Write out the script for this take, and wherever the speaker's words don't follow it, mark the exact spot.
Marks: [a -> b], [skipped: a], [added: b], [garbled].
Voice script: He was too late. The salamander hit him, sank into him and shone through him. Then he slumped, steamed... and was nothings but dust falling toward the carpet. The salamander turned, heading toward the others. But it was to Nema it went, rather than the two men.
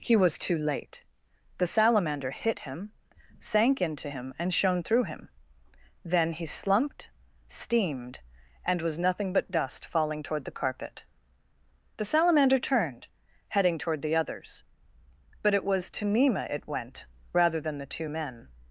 He was too late. The salamander hit him, sank into him and shone through him. Then he slumped, steamed... and was [nothings -> nothing] but dust falling toward the carpet. The salamander turned, heading toward the others. But it was to Nema it went, rather than the two men.